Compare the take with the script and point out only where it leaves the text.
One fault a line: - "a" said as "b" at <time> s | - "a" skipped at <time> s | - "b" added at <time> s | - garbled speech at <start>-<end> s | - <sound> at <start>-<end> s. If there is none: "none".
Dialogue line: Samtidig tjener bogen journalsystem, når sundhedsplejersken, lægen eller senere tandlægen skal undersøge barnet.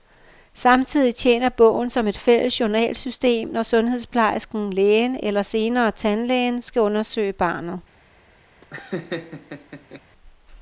- "som et fælles" added at 1.9 s
- laugh at 8.6-10.0 s